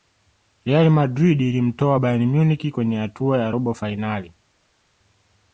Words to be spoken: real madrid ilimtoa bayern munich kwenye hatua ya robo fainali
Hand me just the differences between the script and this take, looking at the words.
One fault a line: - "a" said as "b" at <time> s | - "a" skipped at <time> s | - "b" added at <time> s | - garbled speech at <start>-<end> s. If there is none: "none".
none